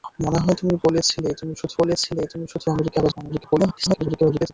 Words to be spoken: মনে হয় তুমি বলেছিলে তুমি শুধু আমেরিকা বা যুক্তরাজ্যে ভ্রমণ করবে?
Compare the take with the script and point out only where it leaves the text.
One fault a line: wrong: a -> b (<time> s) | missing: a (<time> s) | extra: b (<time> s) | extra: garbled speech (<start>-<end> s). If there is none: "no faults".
extra: বলেছিলে তুমি শুধু (1.8 s)
missing: যুক্তরাজ্যে (3.1 s)
extra: garbled speech (3.3-4.5 s)